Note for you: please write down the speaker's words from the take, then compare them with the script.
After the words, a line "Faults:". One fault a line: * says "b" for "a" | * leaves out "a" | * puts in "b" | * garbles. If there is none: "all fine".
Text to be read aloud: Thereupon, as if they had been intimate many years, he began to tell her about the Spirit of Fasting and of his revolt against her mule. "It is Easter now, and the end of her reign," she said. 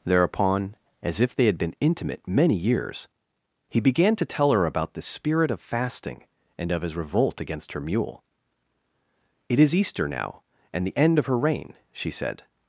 Thereupon, as if they had been intimate many years, he began to tell her about the Spirit of Fasting and of his revolt against her mule. "It is Easter now, and the end of her reign," she said.
Faults:
all fine